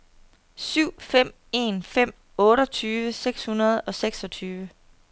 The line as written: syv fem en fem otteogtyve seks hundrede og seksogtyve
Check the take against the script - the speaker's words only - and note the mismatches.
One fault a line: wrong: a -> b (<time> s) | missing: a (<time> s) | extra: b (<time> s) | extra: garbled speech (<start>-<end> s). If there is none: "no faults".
no faults